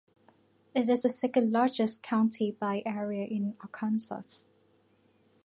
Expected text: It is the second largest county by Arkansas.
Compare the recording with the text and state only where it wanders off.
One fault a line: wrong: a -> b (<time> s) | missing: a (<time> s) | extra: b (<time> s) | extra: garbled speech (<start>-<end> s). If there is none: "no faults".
extra: area in (2.8 s)